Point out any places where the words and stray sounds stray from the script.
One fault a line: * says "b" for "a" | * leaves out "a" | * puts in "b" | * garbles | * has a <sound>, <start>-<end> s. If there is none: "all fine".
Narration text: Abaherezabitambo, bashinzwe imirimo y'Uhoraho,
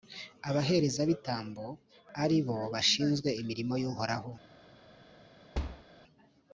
* puts in "ari bo"
* has a thud, 5.5-5.8 s